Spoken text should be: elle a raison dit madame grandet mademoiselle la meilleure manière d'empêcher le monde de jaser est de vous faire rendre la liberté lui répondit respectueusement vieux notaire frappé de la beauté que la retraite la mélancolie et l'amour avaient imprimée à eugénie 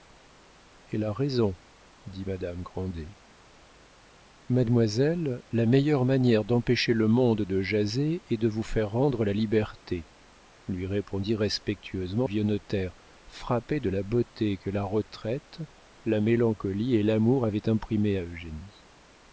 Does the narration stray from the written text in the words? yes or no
no